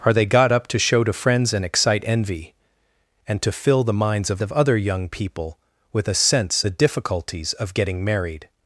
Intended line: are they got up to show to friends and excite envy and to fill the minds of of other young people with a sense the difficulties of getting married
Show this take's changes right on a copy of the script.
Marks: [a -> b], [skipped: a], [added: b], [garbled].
are they got up to show to friends and excite envy and to fill the minds of of other young people with a sense the difficulties of getting married